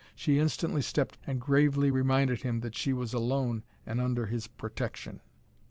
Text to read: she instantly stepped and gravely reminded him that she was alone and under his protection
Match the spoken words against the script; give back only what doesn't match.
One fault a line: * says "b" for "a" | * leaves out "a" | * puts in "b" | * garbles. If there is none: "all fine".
all fine